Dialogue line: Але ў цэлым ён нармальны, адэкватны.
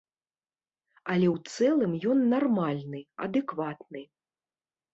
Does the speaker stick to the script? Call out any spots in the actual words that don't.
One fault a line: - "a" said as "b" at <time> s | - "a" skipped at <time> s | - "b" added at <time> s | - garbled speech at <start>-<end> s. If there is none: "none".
none